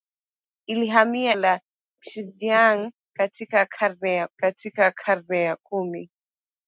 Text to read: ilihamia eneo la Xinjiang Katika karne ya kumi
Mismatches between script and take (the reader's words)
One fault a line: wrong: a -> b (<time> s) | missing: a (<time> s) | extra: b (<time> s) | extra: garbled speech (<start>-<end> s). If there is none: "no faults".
missing: eneo (1.4 s)
extra: Katika karne ya (4.4 s)